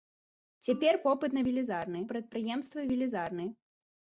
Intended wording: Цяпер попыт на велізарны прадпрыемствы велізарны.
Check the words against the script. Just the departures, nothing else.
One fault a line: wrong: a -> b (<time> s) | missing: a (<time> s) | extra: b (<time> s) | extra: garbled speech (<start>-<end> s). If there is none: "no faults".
no faults